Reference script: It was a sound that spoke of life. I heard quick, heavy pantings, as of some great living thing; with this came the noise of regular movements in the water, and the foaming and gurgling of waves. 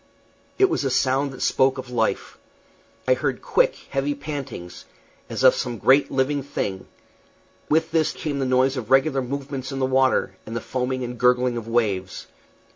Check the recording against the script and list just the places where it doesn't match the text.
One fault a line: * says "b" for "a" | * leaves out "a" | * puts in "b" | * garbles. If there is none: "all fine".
all fine